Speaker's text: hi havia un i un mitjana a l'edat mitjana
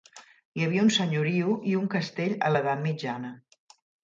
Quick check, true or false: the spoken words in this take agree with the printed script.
false